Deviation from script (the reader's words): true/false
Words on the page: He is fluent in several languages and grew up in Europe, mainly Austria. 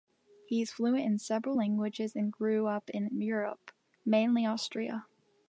false